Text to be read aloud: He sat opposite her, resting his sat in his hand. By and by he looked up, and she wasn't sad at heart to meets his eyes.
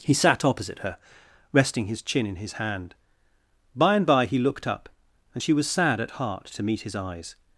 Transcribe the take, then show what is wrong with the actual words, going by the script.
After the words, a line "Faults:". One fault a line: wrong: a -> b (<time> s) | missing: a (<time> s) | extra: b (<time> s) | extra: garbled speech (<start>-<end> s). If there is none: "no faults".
He sat opposite her, resting his chin in his hand. By and by he looked up, and she was sad at heart to meet his eyes.
Faults:
wrong: sat -> chin (2.0 s)
wrong: wasn't -> was (5.5 s)
wrong: meets -> meet (6.6 s)